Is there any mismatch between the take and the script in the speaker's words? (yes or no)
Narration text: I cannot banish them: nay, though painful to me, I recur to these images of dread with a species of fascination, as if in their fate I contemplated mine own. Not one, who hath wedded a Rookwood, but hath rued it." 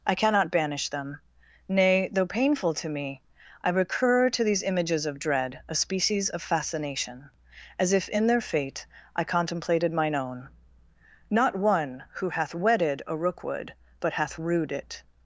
yes